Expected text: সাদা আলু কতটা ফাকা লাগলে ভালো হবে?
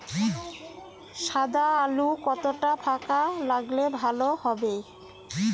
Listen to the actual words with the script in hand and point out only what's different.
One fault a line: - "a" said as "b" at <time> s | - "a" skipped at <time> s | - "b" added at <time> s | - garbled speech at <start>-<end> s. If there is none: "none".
none